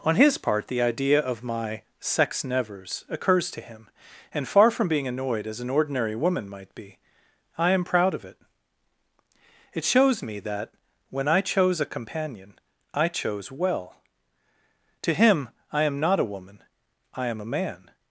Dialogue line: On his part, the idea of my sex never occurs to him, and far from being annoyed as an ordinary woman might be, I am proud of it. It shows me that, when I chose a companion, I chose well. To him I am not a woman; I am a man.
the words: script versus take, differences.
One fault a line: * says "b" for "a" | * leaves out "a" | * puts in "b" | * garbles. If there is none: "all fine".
* says "nevers" for "never"